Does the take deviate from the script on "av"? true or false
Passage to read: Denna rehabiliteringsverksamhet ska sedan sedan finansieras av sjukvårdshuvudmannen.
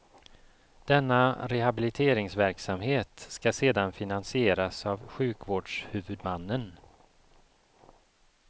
false